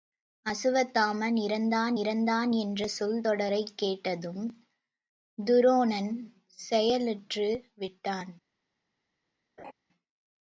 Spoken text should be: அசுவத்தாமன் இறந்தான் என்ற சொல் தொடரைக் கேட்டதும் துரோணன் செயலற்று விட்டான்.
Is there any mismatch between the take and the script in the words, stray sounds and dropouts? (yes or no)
yes